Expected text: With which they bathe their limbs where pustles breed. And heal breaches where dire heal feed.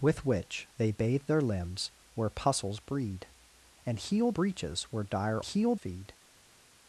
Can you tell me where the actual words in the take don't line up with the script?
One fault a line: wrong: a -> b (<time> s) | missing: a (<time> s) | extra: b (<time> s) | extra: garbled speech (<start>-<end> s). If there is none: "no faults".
no faults